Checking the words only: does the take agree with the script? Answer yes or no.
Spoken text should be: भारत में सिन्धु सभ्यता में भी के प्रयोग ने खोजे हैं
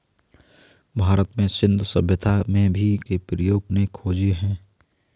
yes